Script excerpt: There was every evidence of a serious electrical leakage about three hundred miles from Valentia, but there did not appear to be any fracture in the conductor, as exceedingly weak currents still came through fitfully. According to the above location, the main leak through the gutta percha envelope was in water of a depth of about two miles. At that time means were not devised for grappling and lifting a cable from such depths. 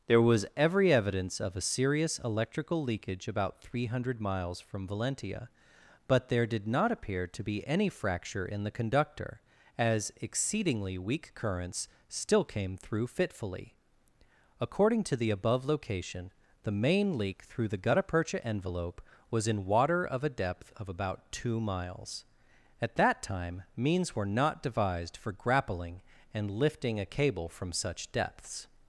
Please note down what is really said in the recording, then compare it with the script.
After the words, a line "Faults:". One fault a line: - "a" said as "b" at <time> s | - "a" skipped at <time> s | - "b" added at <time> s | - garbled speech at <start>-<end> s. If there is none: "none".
There was every evidence of a serious electrical leakage about three hundred miles from Valentia, but there did not appear to be any fracture in the conductor, as exceedingly weak currents still came through fitfully. According to the above location, the main leak through the gutta percha envelope was in water of a depth of about two miles. At that time means were not devised for grappling and lifting a cable from such depths.
Faults:
none